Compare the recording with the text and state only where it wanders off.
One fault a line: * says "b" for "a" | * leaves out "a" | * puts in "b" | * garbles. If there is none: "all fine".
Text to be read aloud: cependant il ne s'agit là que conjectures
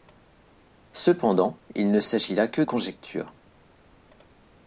all fine